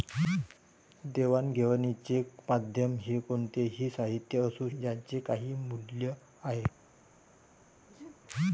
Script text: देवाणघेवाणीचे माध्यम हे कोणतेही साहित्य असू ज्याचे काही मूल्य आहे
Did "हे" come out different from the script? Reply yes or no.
no